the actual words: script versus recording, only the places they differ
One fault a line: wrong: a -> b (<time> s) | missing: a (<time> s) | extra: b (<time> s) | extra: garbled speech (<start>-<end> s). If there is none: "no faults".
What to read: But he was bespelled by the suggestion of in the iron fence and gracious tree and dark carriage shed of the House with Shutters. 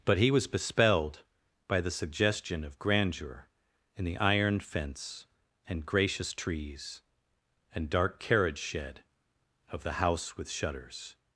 extra: grandeur (2.8 s)
wrong: tree -> trees (6.3 s)